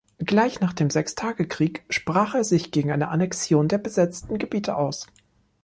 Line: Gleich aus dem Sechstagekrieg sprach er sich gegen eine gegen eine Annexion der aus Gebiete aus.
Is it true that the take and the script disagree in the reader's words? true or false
true